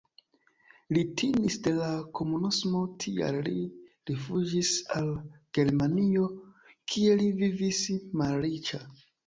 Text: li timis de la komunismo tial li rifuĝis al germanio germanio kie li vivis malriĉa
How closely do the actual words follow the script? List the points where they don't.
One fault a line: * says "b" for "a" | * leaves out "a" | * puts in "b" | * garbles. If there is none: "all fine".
* leaves out "germanio"